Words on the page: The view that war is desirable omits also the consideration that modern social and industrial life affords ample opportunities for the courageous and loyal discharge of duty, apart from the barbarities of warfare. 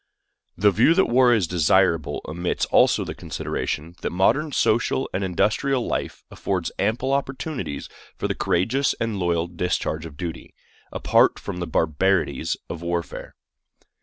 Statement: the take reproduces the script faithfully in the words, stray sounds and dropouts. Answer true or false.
true